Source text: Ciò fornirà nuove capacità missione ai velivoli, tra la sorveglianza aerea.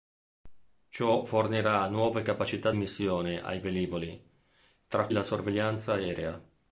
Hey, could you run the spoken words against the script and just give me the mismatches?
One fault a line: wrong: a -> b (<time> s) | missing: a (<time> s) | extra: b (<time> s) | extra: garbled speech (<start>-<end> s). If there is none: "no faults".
no faults